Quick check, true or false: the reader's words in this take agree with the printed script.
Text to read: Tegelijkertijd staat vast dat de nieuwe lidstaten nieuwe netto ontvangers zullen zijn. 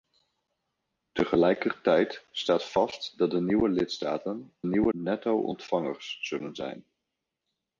true